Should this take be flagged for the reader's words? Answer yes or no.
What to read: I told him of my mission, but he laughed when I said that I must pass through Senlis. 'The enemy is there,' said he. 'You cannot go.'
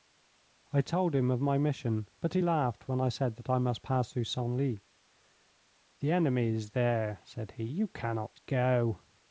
no